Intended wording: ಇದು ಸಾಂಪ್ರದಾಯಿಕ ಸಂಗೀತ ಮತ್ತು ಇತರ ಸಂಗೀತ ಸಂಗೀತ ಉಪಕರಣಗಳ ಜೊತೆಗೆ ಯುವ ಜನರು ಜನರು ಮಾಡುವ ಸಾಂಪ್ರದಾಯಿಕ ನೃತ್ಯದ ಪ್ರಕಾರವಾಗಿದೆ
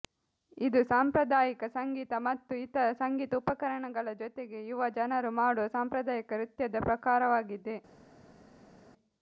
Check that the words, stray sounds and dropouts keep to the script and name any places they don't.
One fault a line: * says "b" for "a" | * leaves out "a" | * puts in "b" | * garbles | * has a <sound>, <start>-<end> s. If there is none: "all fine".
* leaves out "ಸಂಗೀತ"
* leaves out "ಜನರು"